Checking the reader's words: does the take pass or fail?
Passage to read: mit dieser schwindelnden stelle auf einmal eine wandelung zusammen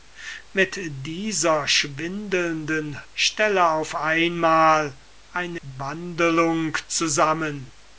pass